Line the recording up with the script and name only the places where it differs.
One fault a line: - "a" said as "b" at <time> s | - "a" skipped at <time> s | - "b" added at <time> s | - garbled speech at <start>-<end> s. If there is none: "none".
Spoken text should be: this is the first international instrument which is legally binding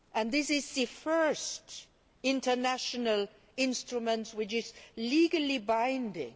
none